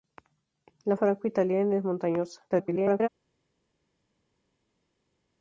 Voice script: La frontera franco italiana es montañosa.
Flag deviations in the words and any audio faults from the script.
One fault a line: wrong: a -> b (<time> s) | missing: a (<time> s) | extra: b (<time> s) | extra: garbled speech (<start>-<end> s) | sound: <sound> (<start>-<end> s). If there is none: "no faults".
missing: frontera (1.0 s)
extra: garbled speech (2.5-3.1 s)